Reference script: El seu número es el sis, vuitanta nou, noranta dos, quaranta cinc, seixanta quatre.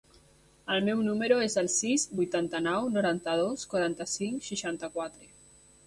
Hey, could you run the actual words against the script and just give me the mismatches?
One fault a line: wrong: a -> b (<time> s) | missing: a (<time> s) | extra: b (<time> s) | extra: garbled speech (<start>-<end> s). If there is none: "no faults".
wrong: seu -> meu (0.9 s)